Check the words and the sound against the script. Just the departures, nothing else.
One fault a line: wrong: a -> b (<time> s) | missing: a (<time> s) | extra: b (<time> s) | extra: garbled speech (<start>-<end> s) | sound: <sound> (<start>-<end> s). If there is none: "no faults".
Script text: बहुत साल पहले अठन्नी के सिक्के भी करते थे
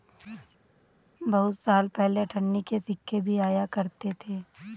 extra: आया (3.4 s)